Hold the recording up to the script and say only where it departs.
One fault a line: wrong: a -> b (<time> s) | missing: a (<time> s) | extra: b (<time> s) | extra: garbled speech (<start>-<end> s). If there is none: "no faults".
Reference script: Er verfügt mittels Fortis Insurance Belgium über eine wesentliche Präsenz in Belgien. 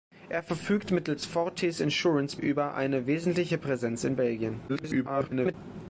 missing: Belgium (2.4 s)
extra: garbled speech (4.7-5.5 s)